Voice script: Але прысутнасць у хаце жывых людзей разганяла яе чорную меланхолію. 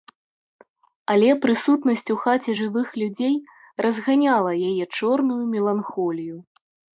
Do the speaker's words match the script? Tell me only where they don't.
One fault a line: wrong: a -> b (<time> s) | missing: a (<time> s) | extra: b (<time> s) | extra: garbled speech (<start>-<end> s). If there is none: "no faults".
no faults